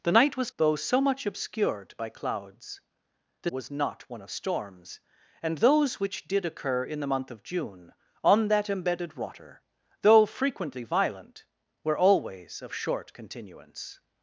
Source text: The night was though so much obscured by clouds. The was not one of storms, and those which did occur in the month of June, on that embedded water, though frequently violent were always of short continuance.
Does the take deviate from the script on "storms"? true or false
false